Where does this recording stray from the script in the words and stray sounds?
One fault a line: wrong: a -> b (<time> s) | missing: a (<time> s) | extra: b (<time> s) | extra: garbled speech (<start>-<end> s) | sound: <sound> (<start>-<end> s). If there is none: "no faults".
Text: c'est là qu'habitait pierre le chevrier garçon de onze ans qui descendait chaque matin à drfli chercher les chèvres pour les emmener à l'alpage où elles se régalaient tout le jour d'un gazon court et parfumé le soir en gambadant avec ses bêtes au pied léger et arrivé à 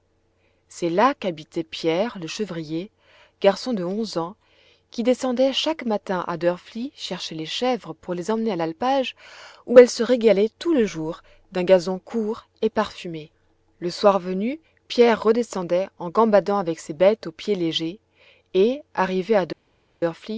extra: venu pierre redescendait (14.2 s)